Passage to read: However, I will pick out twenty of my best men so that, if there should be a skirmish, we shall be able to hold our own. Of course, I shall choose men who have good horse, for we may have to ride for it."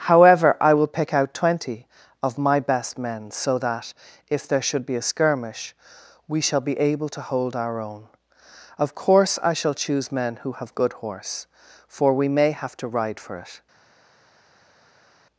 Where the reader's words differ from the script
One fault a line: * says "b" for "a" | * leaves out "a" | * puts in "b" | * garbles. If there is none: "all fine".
all fine